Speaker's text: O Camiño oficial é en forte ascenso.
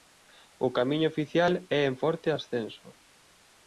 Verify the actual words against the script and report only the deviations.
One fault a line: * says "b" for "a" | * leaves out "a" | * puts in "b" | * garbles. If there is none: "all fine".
all fine